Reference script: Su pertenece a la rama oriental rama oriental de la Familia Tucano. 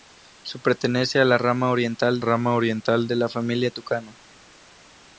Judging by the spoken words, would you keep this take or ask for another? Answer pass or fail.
pass